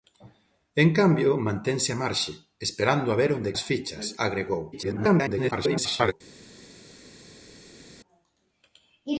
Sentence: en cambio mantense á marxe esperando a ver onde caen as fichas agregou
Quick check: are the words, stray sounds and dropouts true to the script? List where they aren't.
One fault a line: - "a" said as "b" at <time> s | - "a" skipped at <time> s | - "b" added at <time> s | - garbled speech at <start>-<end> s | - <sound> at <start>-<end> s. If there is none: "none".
- "caen" skipped at 3.6 s
- garbled speech at 4.7-6.1 s